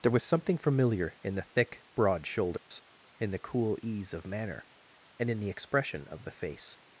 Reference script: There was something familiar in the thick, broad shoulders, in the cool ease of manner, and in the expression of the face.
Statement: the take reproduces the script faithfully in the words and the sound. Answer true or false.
false